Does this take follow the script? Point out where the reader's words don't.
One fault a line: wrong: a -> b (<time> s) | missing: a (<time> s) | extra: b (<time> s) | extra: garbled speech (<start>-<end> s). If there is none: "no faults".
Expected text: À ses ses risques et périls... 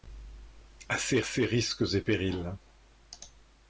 no faults